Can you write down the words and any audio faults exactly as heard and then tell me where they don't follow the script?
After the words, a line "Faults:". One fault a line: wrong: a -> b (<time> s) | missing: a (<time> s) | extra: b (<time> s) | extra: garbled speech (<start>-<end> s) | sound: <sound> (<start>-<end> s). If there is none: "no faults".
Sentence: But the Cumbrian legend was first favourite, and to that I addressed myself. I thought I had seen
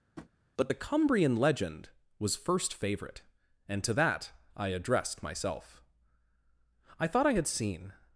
But the Cumbrian legend was first favourite, and to that I addressed myself. I thought I had seen
Faults:
sound: tap (0.2-0.3 s)